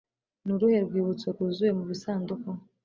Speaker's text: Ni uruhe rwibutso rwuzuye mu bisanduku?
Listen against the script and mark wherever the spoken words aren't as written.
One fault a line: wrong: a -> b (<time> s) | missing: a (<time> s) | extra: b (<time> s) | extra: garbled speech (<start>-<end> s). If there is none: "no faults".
no faults